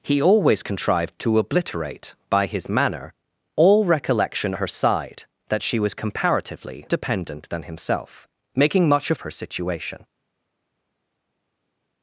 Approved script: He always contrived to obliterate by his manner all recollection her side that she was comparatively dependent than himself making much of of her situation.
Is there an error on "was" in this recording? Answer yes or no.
no